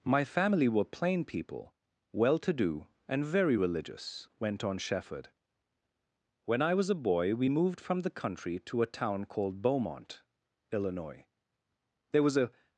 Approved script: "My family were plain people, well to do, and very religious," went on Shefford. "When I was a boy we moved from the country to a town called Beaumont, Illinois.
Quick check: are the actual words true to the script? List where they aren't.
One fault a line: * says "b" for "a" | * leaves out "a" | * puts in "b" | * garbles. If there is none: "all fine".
* puts in "There was a"